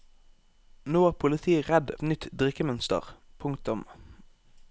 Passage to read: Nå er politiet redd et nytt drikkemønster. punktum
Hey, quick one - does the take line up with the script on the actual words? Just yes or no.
yes